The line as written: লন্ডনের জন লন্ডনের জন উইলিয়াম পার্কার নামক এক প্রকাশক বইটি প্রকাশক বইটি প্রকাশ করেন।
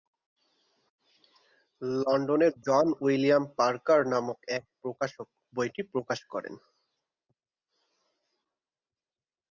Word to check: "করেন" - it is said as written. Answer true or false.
true